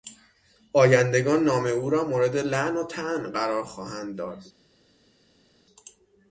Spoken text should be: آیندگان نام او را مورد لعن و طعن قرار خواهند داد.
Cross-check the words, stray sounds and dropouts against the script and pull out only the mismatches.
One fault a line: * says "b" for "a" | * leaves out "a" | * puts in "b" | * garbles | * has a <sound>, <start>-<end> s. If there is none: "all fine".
all fine